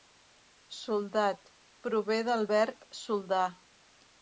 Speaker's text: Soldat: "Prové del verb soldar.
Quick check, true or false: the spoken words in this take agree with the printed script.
true